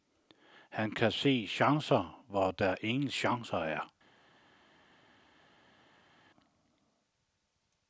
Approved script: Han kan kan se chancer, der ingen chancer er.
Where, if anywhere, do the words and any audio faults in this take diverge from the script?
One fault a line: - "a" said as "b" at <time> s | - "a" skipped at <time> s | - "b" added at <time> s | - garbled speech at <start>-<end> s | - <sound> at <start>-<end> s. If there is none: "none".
- "kan" skipped at 1.1 s
- "hvor" added at 2.3 s